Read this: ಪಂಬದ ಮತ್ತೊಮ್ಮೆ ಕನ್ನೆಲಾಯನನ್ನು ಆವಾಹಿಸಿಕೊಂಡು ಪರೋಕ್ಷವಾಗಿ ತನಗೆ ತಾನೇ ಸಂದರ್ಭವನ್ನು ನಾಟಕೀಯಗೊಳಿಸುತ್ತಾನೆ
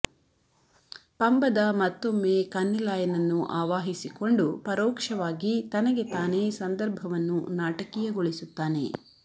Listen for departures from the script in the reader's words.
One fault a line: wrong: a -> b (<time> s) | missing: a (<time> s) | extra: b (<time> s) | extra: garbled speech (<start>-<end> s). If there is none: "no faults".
no faults